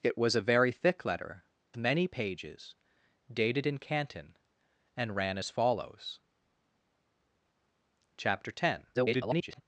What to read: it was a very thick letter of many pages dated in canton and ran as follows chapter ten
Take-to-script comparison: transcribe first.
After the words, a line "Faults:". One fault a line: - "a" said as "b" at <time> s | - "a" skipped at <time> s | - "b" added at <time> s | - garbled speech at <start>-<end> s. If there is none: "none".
it was a very thick letter many pages dated in canton and ran as follows chapter ten [garbled]
Faults:
- "of" skipped at 1.4 s
- garbled speech at 8.9-9.6 s